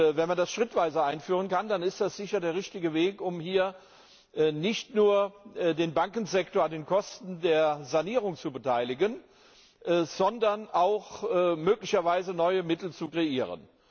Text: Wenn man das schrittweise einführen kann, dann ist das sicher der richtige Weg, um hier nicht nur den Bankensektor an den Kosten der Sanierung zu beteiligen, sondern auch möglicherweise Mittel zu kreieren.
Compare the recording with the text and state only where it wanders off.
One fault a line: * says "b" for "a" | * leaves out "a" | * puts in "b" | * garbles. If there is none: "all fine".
* puts in "neue"